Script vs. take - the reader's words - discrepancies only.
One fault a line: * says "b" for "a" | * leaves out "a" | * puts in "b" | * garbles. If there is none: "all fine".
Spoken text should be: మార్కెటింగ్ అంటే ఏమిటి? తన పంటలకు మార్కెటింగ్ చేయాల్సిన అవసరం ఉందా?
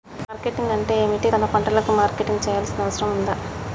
all fine